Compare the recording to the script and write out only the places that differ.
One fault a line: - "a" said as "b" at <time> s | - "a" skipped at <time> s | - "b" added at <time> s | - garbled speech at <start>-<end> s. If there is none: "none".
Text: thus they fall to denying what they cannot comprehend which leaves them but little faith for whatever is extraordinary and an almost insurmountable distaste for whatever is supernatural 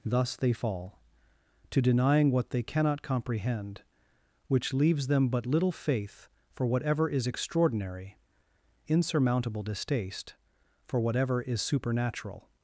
- "and an almost" skipped at 8.2 s